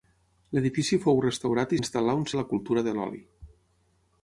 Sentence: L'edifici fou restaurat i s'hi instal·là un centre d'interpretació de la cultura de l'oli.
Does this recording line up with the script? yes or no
no